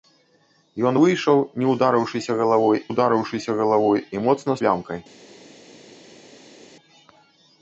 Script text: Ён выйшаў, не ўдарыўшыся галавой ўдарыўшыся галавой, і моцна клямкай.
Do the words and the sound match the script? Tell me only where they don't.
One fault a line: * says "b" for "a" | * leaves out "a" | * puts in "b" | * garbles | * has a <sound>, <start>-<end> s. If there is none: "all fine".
all fine